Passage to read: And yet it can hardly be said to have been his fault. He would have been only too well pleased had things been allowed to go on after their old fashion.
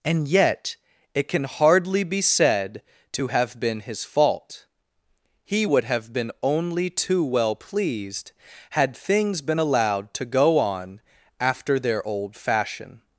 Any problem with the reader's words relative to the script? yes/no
no